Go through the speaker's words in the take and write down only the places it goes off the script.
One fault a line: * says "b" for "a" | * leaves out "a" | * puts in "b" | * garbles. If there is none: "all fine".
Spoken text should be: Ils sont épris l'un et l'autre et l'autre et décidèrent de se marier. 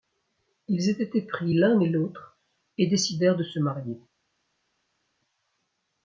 * says "étaient" for "sont"
* leaves out "l'autre et"